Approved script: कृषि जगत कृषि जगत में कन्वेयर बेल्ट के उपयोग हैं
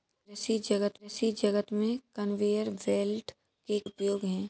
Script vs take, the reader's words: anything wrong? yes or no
no